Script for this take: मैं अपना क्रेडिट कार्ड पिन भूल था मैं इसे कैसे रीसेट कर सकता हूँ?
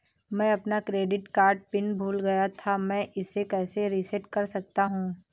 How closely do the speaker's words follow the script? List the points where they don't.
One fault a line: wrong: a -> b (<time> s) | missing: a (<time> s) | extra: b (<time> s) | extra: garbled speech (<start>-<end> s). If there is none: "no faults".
extra: गया (2.2 s)